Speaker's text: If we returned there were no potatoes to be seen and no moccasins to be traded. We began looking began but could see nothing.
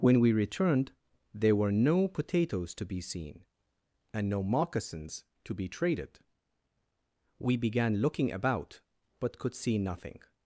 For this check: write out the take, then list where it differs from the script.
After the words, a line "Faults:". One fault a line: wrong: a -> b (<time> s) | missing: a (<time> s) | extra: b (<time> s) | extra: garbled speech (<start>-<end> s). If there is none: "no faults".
When we returned there were no potatoes to be seen and no moccasins to be traded. We began looking about but could see nothing.
Faults:
wrong: If -> When (0.0 s)
wrong: began -> about (8.3 s)